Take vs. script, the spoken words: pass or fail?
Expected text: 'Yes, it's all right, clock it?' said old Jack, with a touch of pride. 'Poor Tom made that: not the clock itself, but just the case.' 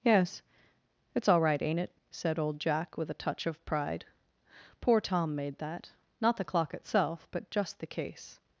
fail